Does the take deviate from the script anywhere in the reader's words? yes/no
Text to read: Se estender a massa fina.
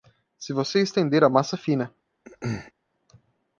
yes